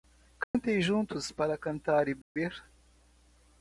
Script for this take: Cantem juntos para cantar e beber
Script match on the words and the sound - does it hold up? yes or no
no